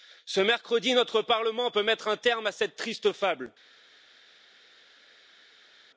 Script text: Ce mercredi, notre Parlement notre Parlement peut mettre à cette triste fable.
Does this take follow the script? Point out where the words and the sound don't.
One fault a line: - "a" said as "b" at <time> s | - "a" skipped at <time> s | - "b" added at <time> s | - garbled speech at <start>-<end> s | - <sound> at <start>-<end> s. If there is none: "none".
- "notre Parlement peut mettre" said as "peut mettre un terme" at 1.7 s